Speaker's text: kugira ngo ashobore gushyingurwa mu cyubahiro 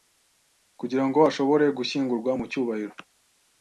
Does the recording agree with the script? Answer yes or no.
yes